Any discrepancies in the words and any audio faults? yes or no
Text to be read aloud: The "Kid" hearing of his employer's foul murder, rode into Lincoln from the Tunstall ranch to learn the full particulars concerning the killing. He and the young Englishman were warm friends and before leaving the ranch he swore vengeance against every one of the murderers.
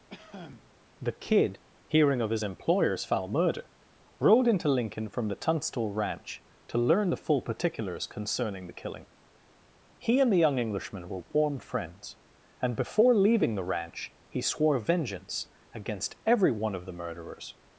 yes